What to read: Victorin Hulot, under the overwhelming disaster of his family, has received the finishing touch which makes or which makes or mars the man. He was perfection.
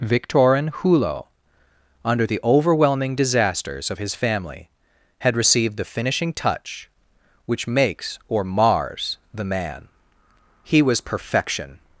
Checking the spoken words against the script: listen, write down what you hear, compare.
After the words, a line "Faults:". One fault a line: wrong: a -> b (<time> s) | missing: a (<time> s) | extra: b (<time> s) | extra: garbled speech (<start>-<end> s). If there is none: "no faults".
Victorin Hulot, under the overwhelming disasters of his family, had received the finishing touch which makes or mars the man. He was perfection.
Faults:
wrong: disaster -> disasters (3.1 s)
wrong: has -> had (5.2 s)
missing: which makes or (8.4 s)